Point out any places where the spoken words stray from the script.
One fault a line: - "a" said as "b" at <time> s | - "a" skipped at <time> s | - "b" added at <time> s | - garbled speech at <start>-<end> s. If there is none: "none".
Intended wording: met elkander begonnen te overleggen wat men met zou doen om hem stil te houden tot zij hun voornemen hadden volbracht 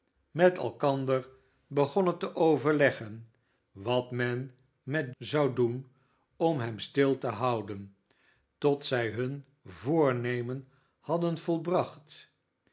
none